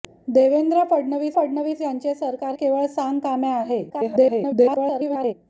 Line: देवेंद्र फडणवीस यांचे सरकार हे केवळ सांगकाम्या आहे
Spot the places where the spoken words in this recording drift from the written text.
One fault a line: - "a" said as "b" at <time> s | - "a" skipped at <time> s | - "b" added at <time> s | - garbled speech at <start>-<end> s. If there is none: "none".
- "फडणवीस" added at 1.4 s
- "हे" skipped at 2.5 s
- garbled speech at 3.9-5.3 s